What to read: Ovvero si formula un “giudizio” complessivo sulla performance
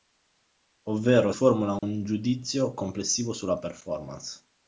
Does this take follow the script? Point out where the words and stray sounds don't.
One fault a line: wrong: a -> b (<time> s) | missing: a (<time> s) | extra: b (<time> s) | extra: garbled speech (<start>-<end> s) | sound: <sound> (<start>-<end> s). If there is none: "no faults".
missing: si (1.3 s)
sound: dropout (1.8-1.8 s)